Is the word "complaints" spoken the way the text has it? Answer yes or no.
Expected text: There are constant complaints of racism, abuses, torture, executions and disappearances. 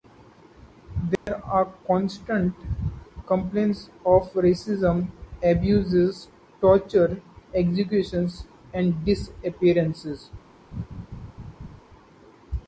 yes